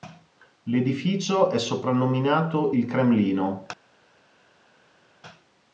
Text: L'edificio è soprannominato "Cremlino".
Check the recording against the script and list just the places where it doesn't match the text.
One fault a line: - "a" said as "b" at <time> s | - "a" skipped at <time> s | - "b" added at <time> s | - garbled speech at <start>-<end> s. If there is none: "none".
- "Il" added at 2.7 s